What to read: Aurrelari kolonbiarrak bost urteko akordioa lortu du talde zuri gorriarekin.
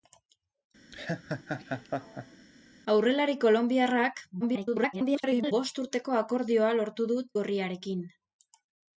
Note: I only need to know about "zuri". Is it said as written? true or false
false